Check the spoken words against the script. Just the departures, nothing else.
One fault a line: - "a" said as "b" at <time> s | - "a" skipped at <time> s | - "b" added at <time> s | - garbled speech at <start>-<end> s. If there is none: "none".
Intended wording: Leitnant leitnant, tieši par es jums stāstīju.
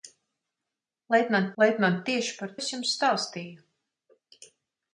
none